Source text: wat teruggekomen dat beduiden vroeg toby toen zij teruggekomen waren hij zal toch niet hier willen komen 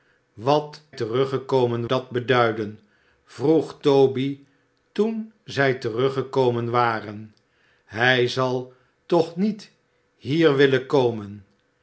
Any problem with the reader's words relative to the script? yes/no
no